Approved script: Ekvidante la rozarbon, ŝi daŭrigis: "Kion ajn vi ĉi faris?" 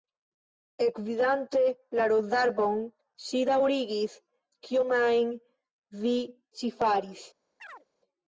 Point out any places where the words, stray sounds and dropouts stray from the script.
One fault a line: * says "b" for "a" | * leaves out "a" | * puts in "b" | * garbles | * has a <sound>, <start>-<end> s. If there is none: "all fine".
* has a chirp, 7.6-7.9 s